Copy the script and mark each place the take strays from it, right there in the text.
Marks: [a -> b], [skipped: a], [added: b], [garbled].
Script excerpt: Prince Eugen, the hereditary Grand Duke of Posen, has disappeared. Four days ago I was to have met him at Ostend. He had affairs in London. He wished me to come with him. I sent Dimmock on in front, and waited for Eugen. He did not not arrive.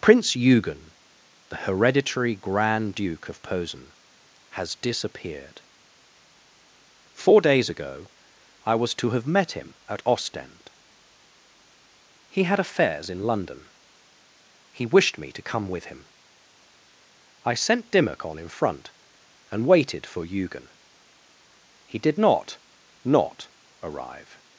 Prince Eugen, the hereditary Grand Duke of Posen, has disappeared. Four days ago I was to have met him at Ostend. He had affairs in London. He wished me to come with him. I sent Dimmock on in front, and waited for Eugen. He did not not arrive.